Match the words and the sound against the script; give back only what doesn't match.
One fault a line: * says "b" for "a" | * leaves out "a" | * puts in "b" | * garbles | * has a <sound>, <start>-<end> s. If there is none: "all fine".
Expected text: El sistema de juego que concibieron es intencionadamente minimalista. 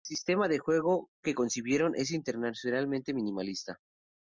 all fine